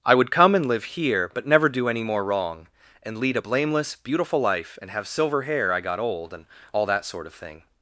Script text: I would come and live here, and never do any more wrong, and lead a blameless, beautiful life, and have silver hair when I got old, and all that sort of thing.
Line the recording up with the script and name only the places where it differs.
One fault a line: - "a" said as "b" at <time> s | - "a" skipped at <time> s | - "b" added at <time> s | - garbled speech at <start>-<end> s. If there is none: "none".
- "and" said as "but" at 1.3 s
- "when" skipped at 5.7 s